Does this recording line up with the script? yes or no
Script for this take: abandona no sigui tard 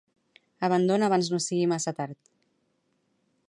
no